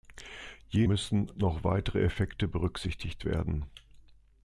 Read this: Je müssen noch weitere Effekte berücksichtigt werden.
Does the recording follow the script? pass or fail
pass